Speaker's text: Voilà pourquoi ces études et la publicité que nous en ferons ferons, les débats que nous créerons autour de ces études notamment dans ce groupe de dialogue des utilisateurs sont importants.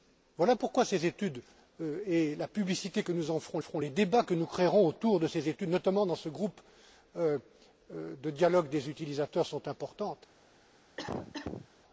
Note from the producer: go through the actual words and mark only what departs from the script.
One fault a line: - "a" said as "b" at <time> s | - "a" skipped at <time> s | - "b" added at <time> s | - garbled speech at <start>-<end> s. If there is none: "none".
none